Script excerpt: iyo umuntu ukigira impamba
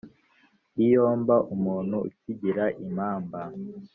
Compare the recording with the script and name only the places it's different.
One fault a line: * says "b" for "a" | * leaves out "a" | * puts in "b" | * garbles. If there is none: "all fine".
* puts in "mba"